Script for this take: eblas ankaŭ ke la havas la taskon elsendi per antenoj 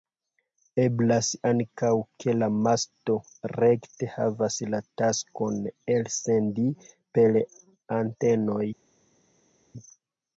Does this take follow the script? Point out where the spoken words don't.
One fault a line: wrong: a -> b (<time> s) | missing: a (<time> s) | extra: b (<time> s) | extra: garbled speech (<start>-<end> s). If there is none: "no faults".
extra: masto rekte (2.7 s)